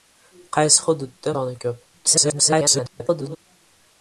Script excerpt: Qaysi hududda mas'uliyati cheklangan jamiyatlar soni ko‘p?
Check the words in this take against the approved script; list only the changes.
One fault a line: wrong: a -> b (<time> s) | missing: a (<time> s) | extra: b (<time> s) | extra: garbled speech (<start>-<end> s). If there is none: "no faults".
missing: mas'uliyati cheklangan jamiyatlar (1.4 s)
extra: garbled speech (1.9-3.4 s)